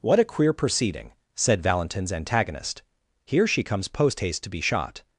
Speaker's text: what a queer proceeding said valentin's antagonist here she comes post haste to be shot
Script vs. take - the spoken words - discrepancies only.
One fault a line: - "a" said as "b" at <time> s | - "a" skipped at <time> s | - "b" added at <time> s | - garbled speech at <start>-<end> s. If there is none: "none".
none